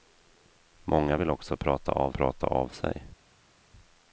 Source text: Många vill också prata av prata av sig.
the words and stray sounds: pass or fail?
pass